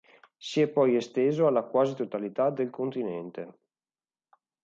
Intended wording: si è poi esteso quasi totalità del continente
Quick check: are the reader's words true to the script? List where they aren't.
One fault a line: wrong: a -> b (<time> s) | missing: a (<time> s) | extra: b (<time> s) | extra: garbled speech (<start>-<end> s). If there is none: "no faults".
extra: alla (1.4 s)